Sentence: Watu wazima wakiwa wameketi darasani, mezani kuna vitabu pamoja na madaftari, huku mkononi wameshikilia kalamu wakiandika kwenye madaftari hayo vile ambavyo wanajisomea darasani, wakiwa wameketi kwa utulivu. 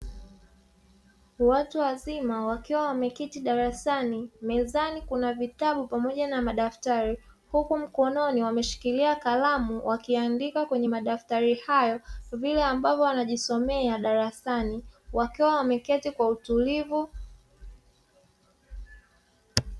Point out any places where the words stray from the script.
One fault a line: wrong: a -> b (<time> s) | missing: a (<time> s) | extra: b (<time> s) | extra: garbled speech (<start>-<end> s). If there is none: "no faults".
no faults